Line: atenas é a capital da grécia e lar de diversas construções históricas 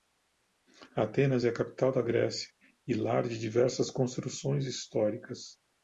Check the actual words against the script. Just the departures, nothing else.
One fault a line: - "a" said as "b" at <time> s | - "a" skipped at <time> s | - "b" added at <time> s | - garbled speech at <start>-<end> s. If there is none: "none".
none